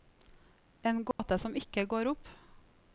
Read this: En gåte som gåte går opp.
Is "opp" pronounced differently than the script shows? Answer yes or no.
no